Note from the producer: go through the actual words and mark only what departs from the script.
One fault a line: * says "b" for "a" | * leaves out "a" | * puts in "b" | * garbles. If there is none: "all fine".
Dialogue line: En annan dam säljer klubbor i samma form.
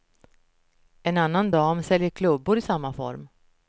all fine